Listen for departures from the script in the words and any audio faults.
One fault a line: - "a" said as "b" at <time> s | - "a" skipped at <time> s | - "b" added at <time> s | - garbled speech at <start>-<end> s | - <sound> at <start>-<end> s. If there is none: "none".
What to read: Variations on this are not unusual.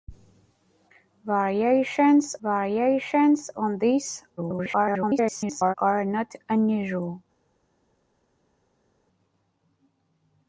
- "variations" added at 2.4 s
- garbled speech at 4.4-5.7 s